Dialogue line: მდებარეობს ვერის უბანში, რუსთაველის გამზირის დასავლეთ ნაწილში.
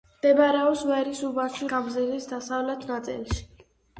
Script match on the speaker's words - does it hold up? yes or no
no